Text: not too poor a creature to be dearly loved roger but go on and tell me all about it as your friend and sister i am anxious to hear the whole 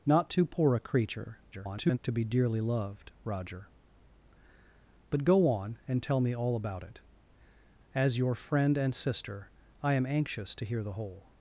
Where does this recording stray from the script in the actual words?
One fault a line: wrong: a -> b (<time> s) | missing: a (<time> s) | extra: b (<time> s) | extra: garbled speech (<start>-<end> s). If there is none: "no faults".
extra: garbled speech (1.5-2.0 s)